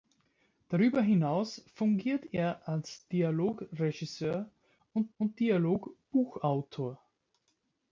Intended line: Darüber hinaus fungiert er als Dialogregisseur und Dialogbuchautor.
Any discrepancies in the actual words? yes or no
yes